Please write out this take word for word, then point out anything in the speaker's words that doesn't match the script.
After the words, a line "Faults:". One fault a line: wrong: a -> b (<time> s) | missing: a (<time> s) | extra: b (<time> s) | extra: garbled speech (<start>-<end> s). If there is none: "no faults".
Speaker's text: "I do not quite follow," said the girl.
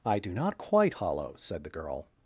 "I do not quite hollow," said the girl.
Faults:
wrong: follow -> hollow (0.9 s)